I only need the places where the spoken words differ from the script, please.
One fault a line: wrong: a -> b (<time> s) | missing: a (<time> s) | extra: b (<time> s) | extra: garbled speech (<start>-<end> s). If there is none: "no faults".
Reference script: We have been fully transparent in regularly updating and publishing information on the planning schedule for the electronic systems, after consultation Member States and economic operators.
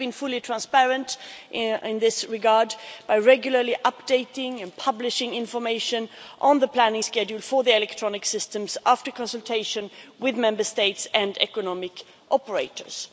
extra: this regard by (2.0 s)
extra: with (10.2 s)